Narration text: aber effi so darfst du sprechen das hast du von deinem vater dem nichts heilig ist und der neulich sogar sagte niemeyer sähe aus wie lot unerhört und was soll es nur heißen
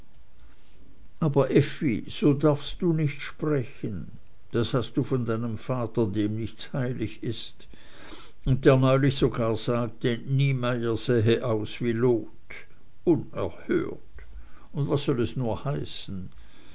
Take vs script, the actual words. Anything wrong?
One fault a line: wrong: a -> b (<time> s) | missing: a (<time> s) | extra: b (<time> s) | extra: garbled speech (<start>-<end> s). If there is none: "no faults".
extra: nicht (2.9 s)